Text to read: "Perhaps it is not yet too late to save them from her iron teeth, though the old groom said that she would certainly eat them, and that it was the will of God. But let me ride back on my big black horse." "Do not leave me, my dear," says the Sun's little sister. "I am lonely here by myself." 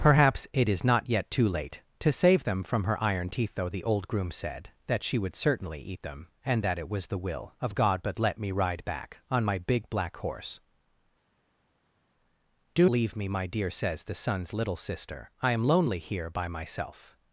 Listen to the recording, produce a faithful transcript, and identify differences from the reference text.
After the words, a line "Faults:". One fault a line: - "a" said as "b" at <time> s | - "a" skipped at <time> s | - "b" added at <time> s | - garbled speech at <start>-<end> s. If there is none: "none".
"Perhaps it is not yet too late to save them from her iron teeth, though the old groom said that she would certainly eat them, and that it was the will of God. But let me ride back on my big black horse." "Do leave me, my dear," says the Sun's little sister. "I am lonely here by myself."
Faults:
- "not" skipped at 12.9 s